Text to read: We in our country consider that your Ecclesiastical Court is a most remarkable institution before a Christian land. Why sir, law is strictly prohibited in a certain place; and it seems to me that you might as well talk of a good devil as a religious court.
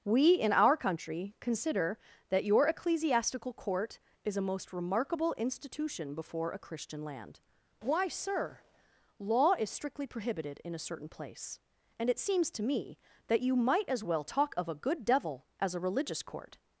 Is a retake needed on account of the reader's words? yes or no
no